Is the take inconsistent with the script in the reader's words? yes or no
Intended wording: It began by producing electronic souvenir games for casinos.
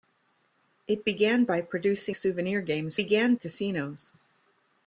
yes